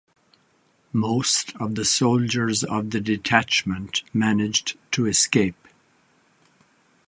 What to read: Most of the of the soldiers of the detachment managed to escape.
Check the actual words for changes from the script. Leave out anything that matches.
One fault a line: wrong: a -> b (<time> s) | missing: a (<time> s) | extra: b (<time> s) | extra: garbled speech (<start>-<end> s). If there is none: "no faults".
missing: of the (1.8 s)